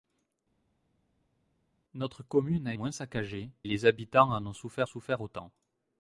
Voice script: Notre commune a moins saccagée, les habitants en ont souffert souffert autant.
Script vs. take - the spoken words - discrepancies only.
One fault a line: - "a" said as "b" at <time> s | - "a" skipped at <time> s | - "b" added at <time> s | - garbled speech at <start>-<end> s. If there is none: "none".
none